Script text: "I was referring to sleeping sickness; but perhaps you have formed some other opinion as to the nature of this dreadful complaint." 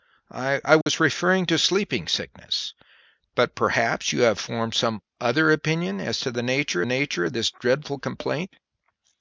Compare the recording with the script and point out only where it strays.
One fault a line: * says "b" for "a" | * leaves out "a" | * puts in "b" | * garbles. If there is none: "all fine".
* puts in "nature"